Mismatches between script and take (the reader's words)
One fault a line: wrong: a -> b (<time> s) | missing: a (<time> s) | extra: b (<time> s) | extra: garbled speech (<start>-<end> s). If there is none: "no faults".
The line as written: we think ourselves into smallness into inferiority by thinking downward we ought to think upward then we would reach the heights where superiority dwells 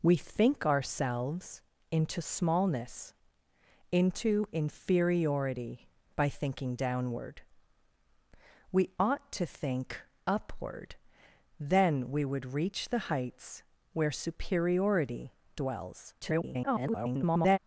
extra: garbled speech (16.2-17.6 s)